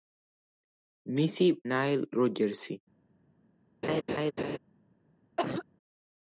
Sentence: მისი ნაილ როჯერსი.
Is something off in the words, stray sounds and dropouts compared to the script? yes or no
yes